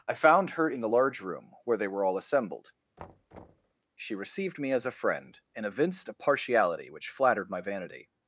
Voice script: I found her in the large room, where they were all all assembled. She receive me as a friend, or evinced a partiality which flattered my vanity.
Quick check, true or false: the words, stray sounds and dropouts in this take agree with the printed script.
false